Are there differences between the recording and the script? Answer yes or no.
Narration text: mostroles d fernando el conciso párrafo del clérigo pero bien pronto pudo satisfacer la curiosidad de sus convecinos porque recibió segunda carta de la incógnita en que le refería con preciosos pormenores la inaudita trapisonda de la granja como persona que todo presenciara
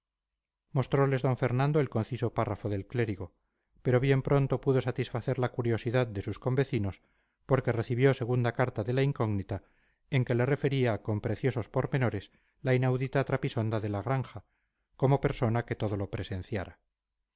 yes